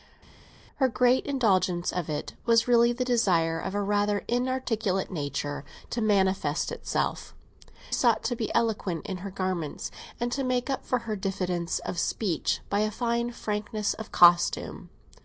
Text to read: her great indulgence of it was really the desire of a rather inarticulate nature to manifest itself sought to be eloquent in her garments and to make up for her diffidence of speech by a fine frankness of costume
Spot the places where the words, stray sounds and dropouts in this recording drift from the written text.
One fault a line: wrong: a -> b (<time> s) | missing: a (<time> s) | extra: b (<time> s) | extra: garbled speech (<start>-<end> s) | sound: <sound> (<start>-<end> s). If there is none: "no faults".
no faults